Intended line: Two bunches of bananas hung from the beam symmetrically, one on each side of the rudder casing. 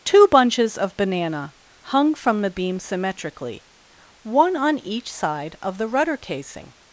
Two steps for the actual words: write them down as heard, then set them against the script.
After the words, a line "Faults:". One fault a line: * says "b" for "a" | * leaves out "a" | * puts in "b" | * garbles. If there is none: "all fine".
Two bunches of banana hung from the beam symmetrically, one on each side of the rudder casing.
Faults:
* says "banana" for "bananas"